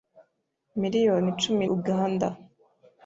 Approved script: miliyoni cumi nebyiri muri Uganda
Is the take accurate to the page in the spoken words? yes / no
no